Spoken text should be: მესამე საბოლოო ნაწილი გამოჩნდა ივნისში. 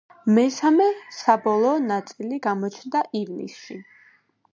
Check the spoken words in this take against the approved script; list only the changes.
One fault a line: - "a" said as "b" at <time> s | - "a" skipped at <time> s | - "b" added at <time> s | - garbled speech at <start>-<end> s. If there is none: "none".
none